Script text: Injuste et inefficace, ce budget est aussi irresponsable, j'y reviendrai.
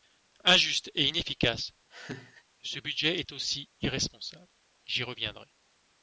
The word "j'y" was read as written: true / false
true